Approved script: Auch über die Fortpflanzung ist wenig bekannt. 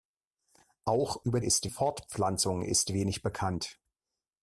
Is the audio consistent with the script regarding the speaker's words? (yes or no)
no